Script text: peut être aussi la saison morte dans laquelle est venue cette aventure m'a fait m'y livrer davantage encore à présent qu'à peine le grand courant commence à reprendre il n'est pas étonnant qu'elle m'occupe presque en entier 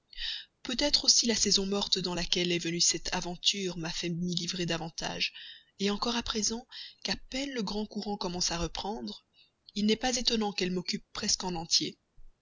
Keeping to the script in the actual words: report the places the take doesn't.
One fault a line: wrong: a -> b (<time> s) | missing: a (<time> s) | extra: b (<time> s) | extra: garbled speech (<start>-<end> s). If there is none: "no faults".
no faults